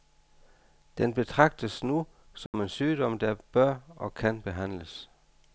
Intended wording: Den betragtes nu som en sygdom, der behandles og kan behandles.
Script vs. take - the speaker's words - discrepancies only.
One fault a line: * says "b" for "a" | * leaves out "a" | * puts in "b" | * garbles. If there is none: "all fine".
* says "bør" for "behandles"